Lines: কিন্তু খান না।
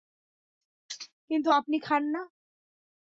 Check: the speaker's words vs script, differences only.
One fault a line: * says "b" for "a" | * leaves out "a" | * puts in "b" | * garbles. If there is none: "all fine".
* puts in "আপনি"